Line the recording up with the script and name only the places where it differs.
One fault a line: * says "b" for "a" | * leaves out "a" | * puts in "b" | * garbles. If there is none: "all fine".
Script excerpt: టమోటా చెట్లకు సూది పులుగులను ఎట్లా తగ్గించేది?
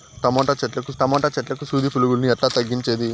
* puts in "టమోటా చెట్లకు"